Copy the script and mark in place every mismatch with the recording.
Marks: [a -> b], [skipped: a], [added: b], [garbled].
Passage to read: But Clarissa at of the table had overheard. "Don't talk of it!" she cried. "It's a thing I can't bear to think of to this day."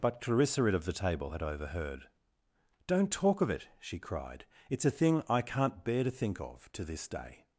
But Clarissa at of the table had overheard. "Don't talk of it!" she cried. "It's a thing I can't bear to think of to this day."